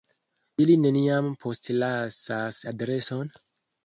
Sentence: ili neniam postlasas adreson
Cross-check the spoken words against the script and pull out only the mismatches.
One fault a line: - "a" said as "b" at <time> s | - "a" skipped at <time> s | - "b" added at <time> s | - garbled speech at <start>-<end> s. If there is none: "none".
none